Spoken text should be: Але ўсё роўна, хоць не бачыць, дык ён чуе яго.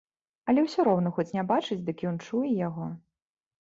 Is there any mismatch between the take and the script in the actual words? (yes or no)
no